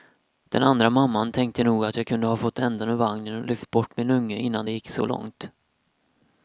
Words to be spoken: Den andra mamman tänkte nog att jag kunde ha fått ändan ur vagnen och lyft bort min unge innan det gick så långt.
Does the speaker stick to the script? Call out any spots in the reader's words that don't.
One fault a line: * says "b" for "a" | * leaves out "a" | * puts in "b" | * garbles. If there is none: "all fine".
all fine